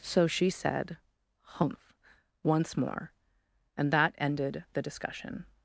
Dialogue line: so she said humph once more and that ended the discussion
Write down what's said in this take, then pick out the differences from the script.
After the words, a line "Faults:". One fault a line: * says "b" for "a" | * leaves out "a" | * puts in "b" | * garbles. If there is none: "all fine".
so she said humph once more and that ended the discussion
Faults:
all fine